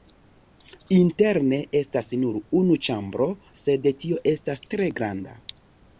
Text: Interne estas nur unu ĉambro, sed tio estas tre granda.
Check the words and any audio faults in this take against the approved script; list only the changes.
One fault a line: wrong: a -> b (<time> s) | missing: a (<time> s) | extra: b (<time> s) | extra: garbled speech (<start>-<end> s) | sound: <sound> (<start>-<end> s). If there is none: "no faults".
no faults